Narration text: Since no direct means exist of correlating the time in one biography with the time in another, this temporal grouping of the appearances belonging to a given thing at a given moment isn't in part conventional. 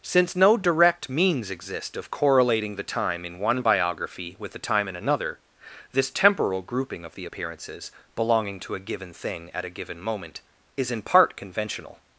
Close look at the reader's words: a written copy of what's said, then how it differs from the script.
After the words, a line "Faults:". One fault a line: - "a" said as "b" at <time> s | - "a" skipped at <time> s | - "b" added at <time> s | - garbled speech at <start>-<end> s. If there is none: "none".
Since no direct means exist of correlating the time in one biography with the time in another, this temporal grouping of the appearances belonging to a given thing at a given moment is in part conventional.
Faults:
- "isn't" said as "is" at 10.7 s